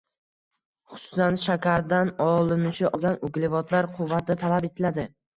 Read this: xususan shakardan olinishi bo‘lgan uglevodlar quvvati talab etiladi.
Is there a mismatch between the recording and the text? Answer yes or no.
no